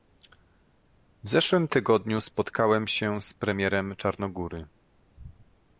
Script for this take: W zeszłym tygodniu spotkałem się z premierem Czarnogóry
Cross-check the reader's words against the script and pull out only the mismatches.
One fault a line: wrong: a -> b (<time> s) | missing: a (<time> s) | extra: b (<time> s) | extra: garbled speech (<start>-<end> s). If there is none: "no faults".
no faults